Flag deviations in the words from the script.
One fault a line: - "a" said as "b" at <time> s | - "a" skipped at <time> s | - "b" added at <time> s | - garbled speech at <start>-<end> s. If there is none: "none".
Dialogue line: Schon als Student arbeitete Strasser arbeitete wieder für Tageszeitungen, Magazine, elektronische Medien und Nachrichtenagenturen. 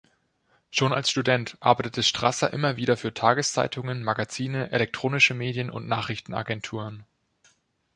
- "arbeitete" said as "immer" at 2.5 s